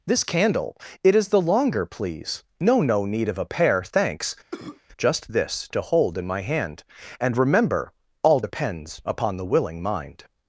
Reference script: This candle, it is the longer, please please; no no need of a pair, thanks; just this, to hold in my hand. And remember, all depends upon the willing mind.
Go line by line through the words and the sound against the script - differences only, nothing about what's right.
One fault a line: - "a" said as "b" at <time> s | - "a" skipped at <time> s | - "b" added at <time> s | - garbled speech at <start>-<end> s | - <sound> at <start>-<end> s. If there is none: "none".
- "please" skipped at 2.4 s
- cough at 4.5-4.8 s